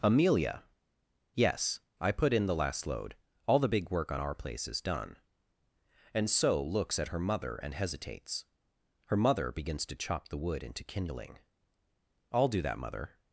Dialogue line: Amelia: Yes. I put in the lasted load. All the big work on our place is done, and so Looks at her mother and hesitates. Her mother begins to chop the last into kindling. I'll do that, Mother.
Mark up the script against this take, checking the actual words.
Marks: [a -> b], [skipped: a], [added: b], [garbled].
Amelia: Yes. I put in the [lasted -> last] load. All the big work on our place is done, and so Looks at her mother and hesitates. Her mother begins to chop the [last -> wood] into kindling. I'll do that, Mother.